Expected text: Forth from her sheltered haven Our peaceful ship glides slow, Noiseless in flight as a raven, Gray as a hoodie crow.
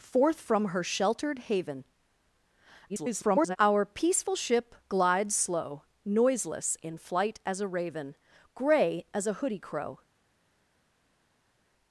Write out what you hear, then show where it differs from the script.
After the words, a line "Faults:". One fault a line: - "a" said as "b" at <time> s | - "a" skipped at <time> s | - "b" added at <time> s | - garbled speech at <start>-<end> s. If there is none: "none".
Forth from her sheltered haven [garbled] Our peaceful ship glides slow, Noiseless in flight as a raven, Gray as a hoodie crow.
Faults:
- garbled speech at 2.9-3.6 s